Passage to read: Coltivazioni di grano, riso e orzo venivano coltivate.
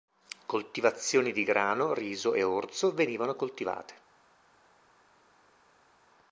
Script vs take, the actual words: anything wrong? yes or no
no